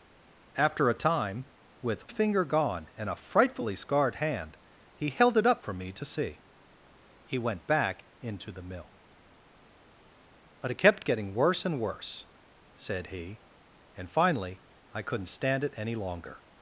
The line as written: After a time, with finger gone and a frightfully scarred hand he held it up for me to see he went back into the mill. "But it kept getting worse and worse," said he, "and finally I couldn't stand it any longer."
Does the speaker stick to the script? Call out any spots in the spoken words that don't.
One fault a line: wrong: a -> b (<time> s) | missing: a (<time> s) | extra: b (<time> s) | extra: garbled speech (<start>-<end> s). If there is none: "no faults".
no faults